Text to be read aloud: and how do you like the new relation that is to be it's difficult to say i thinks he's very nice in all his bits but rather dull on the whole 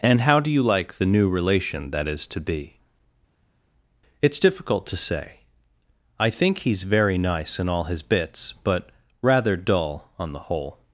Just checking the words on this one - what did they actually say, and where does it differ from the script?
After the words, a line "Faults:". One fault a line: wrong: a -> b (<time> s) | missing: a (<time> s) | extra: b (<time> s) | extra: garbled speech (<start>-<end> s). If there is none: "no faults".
and how do you like the new relation that is to be it's difficult to say i think he's very nice in all his bits but rather dull on the whole
Faults:
wrong: thinks -> think (6.3 s)